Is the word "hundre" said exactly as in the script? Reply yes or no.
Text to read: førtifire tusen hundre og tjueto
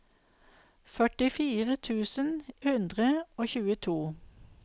yes